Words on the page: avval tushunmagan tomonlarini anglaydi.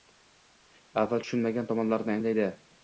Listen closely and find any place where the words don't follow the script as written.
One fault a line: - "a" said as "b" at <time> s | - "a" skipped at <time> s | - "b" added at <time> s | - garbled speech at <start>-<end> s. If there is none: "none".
none